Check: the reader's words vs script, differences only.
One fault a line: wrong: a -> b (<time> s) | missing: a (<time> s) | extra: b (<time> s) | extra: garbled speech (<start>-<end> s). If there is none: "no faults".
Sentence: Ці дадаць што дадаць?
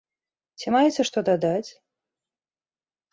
wrong: дадаць -> маеце (0.8 s)